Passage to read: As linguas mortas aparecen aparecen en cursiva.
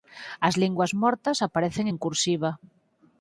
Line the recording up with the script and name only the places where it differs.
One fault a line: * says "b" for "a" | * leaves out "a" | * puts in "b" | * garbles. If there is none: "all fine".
* leaves out "aparecen"